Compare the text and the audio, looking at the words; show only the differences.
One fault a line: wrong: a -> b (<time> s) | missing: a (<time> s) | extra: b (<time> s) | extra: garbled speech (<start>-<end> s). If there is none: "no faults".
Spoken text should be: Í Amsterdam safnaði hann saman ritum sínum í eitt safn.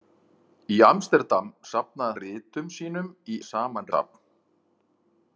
missing: hann saman (2.2 s)
wrong: eitt -> saman (3.5 s)